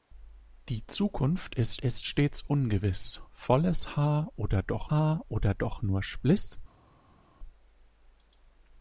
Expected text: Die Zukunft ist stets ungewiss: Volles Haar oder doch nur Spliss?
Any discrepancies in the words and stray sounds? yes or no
yes